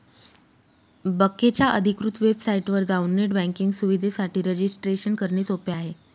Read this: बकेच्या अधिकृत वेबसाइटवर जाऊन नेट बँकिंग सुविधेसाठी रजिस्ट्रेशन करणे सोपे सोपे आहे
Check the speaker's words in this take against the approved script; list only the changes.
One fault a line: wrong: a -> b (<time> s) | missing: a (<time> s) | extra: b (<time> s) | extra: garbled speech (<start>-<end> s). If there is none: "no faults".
missing: सोपे (5.7 s)